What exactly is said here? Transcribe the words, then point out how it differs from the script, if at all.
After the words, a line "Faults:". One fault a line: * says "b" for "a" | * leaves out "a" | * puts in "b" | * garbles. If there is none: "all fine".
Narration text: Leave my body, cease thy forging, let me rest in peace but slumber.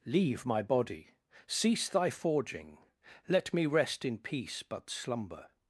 Leave my body, cease thy forging, let me rest in peace but slumber.
Faults:
all fine